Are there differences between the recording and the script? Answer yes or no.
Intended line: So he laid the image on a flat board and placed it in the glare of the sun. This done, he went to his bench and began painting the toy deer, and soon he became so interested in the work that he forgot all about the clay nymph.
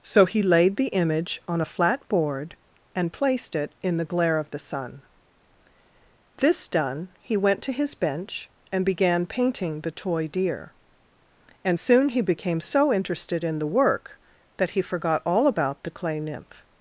no